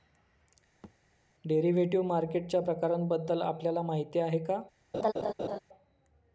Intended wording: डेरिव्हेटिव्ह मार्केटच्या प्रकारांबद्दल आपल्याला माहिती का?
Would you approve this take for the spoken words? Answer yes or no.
no